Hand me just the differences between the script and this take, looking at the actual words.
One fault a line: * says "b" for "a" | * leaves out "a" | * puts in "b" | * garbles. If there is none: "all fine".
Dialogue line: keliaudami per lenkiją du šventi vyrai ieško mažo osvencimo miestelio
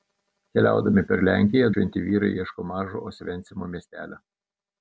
* leaves out "du"